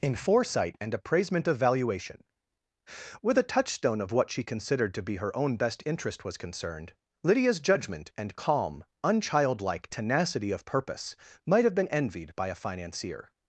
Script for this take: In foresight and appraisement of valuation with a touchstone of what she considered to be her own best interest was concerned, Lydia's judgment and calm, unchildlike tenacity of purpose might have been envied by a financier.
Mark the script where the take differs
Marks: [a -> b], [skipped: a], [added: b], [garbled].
In foresight and appraisement of valuation with a touchstone of what she considered to be her own best interest was concerned, Lydia's judgment and calm, unchildlike tenacity of purpose might have been envied by a financier.